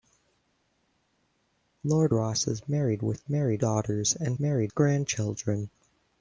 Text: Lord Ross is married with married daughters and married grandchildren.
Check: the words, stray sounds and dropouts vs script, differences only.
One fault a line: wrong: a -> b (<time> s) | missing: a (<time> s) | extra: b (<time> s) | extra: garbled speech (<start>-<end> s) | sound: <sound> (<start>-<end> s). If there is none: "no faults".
no faults